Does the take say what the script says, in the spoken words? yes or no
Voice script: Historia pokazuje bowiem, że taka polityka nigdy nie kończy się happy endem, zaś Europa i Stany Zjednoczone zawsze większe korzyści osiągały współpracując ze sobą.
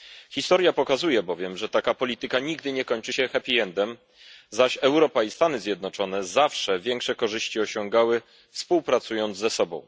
yes